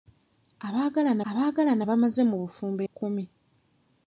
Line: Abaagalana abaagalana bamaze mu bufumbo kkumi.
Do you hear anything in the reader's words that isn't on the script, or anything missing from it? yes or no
no